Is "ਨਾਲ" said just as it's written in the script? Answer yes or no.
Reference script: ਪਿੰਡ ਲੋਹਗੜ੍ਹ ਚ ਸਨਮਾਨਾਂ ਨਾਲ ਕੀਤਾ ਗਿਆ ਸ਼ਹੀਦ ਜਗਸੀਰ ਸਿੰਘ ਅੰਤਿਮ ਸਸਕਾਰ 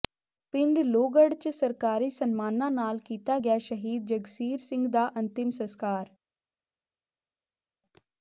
yes